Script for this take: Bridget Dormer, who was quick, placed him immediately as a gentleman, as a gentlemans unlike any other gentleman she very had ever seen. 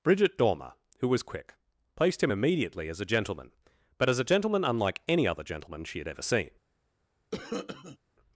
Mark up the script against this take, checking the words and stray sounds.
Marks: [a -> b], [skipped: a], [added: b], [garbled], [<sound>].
Bridget Dormer, who was quick, placed him immediately as a gentleman, [added: but] as a [gentlemans -> gentleman] unlike any other gentleman she [skipped: very] had ever seen. [cough]